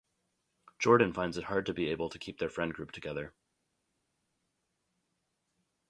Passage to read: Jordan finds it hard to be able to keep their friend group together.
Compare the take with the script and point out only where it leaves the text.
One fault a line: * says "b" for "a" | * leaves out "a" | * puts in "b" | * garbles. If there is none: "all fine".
all fine